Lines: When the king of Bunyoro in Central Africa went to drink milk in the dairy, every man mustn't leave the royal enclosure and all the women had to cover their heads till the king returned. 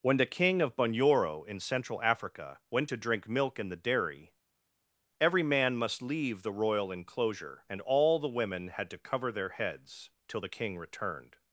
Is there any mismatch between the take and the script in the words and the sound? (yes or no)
yes